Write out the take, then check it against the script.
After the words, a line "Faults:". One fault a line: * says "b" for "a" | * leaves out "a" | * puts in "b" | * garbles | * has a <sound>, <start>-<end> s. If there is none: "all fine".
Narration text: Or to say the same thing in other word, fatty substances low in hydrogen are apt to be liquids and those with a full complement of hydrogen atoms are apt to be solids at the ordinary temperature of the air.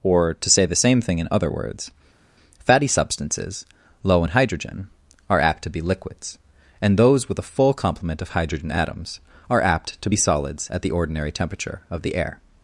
Or to say the same thing in other words, fatty substances low in hydrogen are apt to be liquids and those with a full complement of hydrogen atoms are apt to be solids at the ordinary temperature of the air.
Faults:
* says "words" for "word"